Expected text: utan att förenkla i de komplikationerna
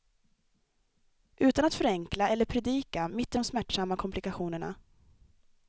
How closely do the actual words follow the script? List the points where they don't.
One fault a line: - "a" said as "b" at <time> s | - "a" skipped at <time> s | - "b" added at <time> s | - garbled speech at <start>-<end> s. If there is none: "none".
- "eller predika mitt" added at 2.3 s
- "smärtsamma" added at 3.4 s